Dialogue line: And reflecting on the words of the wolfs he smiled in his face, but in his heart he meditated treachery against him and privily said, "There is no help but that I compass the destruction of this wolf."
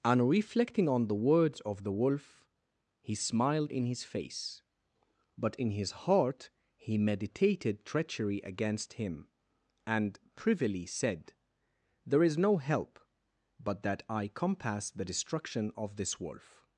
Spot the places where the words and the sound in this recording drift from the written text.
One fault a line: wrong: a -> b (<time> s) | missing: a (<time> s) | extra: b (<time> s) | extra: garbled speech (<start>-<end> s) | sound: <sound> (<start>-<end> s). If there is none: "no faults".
wrong: wolfs -> wolf (1.9 s)